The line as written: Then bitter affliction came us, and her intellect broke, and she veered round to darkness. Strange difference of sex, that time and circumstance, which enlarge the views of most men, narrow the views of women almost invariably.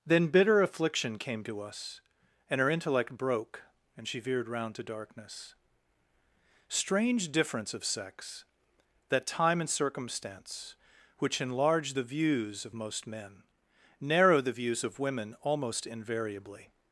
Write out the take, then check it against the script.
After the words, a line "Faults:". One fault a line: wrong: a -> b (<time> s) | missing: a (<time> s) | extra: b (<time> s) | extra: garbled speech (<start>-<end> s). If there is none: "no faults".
Then bitter affliction came to us, and her intellect broke, and she veered round to darkness. Strange difference of sex, that time and circumstance, which enlarge the views of most men, narrow the views of women almost invariably.
Faults:
extra: to (1.4 s)